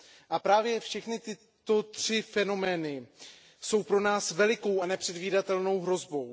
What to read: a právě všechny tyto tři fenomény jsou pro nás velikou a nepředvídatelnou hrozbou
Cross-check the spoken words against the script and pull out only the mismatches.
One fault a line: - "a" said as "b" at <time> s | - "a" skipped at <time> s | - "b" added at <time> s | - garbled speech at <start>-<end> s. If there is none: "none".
none